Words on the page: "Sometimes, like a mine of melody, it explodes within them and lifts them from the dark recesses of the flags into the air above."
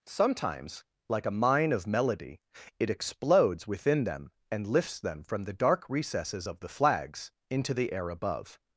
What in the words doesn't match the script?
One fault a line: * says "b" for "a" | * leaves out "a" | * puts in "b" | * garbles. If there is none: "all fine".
all fine